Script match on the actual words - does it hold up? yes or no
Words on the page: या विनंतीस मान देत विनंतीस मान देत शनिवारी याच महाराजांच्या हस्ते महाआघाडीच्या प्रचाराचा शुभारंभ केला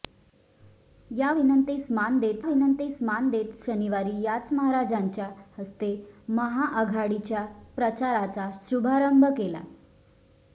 yes